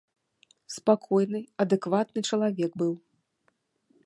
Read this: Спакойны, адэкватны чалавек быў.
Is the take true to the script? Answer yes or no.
yes